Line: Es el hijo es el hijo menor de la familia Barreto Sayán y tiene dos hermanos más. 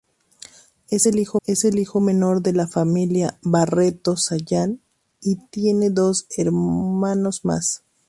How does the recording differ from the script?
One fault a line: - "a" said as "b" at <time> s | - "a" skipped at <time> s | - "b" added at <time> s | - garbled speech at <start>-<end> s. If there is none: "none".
none